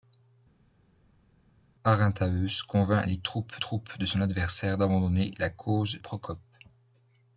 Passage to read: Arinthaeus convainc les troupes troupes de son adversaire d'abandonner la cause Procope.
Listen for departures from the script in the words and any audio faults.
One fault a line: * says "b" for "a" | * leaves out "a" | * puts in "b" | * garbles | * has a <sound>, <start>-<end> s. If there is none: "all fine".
all fine